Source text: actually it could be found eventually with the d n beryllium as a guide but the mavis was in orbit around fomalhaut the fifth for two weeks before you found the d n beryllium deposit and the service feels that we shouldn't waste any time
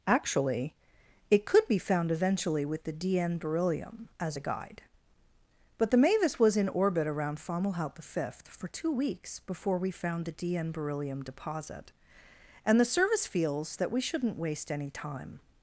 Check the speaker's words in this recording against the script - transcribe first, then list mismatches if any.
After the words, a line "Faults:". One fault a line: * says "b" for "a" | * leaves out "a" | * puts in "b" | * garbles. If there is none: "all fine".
actually it could be found eventually with the d n beryllium as a guide but the mavis was in orbit around fomalhaut the fifth for two weeks before we found the d n beryllium deposit and the service feels that we shouldn't waste any time
Faults:
* says "we" for "you"